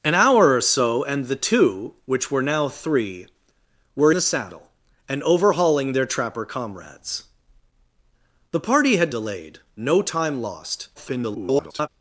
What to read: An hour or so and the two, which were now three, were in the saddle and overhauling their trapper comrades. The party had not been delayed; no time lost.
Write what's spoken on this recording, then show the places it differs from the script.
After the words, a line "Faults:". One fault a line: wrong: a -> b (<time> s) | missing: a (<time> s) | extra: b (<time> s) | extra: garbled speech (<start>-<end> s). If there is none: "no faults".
An hour or so and the two, which were now three, were the saddle and overhauling their trapper comrades. The party had delayed; no time lost. [garbled]
Faults:
missing: in (4.1 s)
missing: not been (9.1 s)
extra: garbled speech (10.9-11.9 s)